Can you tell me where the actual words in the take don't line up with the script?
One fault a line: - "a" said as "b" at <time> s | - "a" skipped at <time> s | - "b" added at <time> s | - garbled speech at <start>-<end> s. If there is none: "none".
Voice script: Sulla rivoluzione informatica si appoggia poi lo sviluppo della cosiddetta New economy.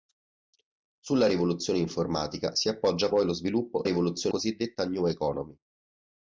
- "della" said as "rivoluzione" at 3.8 s